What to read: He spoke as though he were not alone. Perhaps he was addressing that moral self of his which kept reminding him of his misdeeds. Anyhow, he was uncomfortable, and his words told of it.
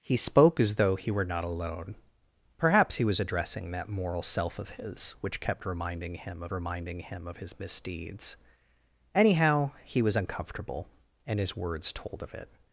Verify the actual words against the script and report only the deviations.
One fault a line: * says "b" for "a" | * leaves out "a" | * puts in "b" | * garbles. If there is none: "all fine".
* puts in "reminding him of"